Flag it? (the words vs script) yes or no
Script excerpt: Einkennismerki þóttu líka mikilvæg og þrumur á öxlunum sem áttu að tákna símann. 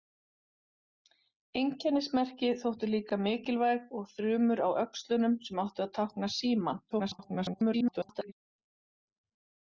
yes